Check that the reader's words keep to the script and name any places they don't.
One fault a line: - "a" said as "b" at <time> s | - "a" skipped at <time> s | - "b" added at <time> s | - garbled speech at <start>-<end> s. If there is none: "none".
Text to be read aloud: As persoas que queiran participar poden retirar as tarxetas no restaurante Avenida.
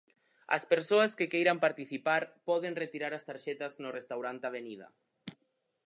none